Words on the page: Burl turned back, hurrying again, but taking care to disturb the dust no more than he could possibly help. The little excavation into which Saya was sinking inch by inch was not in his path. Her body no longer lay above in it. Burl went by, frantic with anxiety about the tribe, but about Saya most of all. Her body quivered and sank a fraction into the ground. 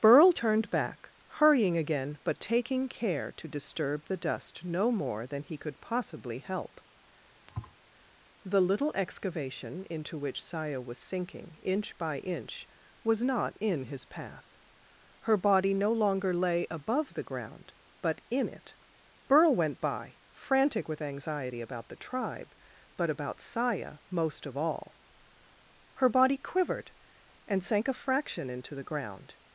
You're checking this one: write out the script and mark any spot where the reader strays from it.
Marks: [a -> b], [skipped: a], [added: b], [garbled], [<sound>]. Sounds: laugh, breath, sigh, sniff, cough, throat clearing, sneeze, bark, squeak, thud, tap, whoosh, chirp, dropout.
Burl turned back, hurrying again, but taking care to disturb the dust no more than he could possibly help. [thud] The little excavation into which Saya was sinking inch by inch was not in his path. Her body no longer lay above [added: the ground but] in it. Burl went by, frantic with anxiety about the tribe, but about Saya most of all. Her body quivered and sank a fraction into the ground.